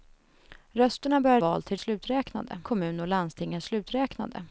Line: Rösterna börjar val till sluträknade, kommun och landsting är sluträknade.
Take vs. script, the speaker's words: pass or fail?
pass